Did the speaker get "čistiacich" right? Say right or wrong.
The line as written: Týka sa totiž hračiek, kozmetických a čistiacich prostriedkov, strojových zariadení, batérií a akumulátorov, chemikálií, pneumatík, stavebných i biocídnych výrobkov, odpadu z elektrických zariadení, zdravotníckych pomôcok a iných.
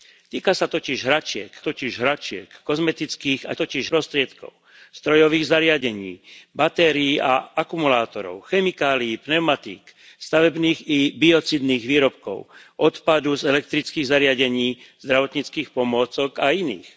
wrong